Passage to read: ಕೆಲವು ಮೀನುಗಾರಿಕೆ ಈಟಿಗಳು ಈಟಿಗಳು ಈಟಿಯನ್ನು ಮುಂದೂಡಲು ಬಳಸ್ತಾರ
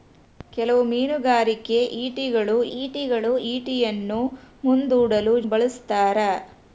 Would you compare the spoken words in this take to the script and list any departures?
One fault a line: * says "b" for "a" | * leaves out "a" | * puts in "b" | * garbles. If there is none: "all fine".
all fine